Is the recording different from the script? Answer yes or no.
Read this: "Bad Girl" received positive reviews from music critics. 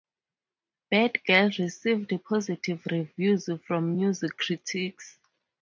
no